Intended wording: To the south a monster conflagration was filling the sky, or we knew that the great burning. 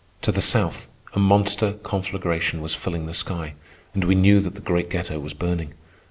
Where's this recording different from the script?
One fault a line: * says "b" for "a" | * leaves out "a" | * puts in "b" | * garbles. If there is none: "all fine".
* says "and" for "or"
* puts in "ghetto was"